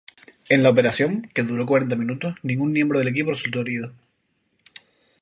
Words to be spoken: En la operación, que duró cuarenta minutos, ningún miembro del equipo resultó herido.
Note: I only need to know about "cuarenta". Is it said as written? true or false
true